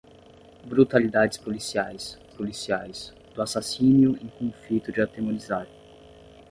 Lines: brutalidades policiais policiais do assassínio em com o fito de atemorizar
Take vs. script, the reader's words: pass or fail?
pass